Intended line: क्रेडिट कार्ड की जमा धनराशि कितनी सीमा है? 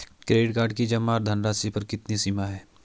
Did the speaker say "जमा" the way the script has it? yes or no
yes